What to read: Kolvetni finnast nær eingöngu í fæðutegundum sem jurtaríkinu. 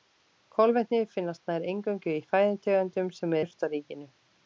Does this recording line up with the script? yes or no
yes